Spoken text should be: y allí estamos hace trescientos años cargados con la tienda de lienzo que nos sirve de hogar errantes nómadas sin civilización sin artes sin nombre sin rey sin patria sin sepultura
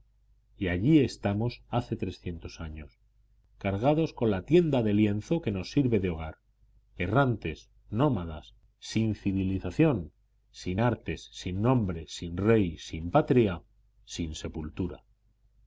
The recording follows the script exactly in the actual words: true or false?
true